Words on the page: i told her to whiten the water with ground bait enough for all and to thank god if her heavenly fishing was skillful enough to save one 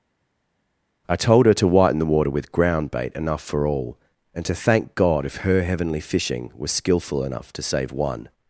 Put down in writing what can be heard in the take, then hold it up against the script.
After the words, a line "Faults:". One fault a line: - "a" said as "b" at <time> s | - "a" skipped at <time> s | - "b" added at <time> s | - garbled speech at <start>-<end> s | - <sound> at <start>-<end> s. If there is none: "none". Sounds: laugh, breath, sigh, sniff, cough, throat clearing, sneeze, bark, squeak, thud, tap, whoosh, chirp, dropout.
i told her to whiten the water with ground bait enough for all and to thank god if her heavenly fishing was skillful enough to save one
Faults:
none